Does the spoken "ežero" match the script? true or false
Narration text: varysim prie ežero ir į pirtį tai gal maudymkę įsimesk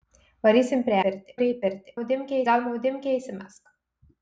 false